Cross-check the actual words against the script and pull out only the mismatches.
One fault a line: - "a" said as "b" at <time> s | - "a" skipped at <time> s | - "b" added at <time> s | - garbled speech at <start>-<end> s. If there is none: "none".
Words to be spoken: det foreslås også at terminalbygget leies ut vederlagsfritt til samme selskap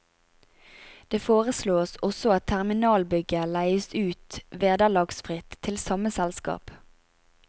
none